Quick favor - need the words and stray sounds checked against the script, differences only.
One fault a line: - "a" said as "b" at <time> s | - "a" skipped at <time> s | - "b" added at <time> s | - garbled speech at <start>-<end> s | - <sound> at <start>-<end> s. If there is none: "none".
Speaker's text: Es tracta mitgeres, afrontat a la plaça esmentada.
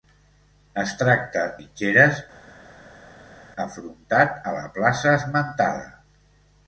none